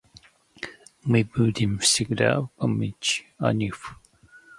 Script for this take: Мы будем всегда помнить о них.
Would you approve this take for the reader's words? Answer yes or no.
yes